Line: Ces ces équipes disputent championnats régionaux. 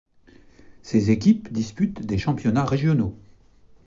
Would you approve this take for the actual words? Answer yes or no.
no